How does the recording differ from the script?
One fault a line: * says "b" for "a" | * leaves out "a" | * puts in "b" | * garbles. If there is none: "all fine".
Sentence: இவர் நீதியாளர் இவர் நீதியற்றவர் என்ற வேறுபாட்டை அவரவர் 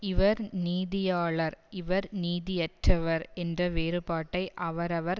all fine